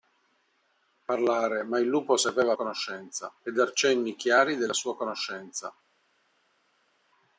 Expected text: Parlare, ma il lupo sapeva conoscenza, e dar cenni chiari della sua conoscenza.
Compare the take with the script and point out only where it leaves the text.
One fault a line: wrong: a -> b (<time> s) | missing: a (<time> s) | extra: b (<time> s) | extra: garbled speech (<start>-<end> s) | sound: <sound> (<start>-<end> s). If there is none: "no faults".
no faults